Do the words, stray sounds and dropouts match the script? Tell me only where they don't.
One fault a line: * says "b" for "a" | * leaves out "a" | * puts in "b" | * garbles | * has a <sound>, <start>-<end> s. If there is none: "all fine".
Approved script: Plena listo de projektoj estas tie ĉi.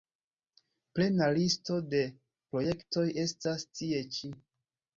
all fine